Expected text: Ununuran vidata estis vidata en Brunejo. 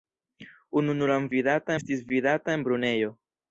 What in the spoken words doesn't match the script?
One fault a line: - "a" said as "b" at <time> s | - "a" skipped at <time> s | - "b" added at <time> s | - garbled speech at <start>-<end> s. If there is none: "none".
none